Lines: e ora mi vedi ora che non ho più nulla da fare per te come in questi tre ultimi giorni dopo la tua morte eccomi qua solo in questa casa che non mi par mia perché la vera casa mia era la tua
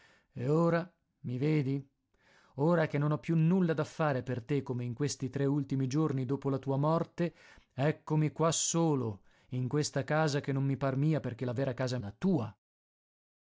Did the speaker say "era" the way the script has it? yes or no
no